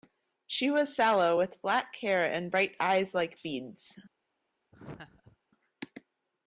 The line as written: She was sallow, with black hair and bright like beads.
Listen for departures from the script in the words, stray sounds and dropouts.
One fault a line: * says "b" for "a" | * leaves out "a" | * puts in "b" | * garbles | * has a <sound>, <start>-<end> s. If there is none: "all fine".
* puts in "eyes"
* has a laugh, 4.7-5.4 s